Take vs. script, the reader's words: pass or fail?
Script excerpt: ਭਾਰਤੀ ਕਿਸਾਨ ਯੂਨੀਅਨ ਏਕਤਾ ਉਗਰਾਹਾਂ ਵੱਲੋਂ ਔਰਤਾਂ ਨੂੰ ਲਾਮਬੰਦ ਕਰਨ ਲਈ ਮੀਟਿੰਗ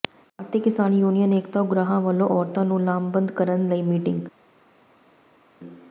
pass